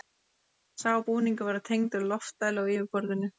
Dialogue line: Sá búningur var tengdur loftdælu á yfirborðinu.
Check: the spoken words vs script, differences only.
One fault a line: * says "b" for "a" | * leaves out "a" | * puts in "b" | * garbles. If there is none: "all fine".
all fine